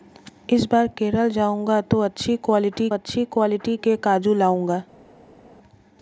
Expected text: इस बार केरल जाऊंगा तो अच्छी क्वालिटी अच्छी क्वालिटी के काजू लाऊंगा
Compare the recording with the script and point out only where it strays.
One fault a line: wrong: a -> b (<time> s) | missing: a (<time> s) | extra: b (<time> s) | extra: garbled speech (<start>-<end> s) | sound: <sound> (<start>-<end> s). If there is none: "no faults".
no faults